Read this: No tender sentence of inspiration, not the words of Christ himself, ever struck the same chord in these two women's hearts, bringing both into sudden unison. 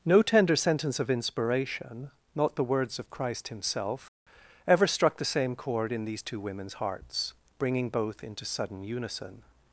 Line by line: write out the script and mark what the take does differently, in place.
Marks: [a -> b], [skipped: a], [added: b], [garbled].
No tender sentence of inspiration, not the words of Christ himself, ever struck the same chord in these two women's hearts, bringing both into sudden unison.